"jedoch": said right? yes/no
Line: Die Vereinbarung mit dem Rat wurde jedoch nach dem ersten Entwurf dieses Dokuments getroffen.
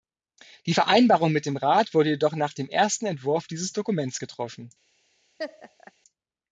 yes